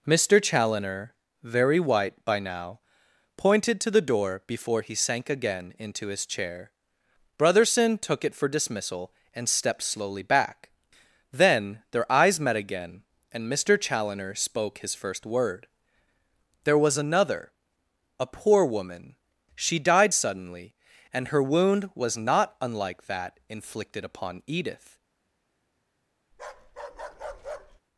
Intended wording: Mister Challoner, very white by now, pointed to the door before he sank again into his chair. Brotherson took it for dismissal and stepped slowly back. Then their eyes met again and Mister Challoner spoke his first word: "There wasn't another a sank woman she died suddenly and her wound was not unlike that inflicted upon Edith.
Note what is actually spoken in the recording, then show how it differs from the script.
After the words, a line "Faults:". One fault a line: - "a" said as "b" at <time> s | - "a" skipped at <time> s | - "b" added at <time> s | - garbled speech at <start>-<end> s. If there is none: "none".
Mister Challoner, very white by now, pointed to the door before he sank again into his chair. Brotherson took it for dismissal and stepped slowly back. Then their eyes met again and Mister Challoner spoke his first word: "There was another a poor woman she died suddenly and her wound was not unlike that inflicted upon Edith.
Faults:
- "wasn't" said as "was" at 16.8 s
- "sank" said as "poor" at 18.2 s